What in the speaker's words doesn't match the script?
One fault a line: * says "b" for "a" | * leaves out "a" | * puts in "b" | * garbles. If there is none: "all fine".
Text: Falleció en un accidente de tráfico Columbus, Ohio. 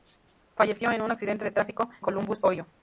all fine